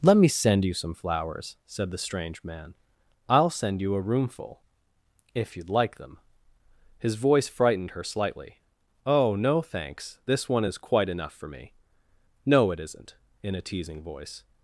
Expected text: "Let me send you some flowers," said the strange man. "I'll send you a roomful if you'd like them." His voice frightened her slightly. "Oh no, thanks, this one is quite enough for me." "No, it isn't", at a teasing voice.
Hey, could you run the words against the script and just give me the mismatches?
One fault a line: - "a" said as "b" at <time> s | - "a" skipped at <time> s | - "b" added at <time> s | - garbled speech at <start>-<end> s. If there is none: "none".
- "at" said as "in" at 13.4 s